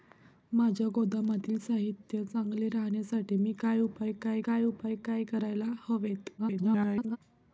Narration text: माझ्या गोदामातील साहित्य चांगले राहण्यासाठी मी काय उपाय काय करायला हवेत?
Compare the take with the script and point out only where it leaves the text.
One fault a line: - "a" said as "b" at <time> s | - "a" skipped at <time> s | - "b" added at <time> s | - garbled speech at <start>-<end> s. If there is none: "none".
- "काय उपाय काय" added at 4.4 s
- garbled speech at 6.4-7.2 s